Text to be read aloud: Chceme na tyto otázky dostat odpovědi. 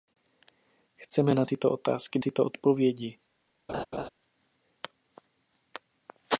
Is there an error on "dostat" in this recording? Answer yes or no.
yes